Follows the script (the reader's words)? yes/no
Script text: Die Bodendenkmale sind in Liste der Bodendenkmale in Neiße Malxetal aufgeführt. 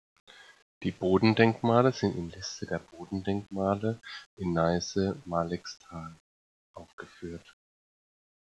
yes